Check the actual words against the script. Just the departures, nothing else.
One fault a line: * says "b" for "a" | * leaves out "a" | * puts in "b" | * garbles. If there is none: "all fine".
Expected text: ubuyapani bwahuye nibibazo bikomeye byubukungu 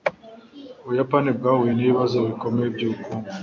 all fine